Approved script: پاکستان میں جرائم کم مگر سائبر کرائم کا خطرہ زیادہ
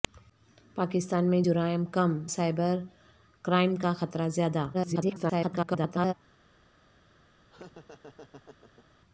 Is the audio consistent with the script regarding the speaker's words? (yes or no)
no